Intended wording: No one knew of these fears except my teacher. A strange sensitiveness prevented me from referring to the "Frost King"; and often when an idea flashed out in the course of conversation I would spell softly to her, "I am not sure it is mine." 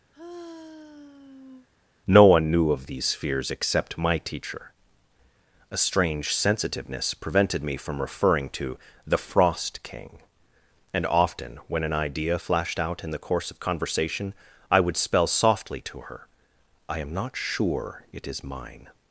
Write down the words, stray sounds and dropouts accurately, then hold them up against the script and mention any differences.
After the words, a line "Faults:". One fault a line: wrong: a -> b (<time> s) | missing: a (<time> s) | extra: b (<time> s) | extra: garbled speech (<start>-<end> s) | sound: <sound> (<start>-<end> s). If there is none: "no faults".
No one knew of these fears except my teacher. A strange sensitiveness prevented me from referring to the "Frost King"; and often when an idea flashed out in the course of conversation I would spell softly to her, "I am not sure it is mine."
Faults:
sound: sigh (0.1-1.7 s)